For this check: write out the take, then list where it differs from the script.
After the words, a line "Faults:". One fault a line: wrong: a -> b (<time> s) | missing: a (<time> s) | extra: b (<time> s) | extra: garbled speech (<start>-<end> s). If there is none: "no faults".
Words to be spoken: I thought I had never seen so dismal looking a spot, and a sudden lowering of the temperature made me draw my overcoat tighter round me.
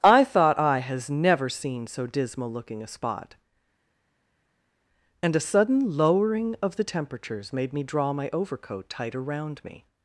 I thought I has never seen so dismal looking a spot, and a sudden lowering of the temperatures made me draw my overcoat tighter round me.
Faults:
wrong: had -> has (0.8 s)
wrong: temperature -> temperatures (6.8 s)